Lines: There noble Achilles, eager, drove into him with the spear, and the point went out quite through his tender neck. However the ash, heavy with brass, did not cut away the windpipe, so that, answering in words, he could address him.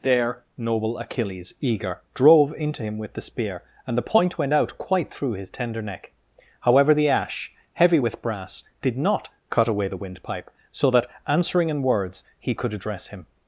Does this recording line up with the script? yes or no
yes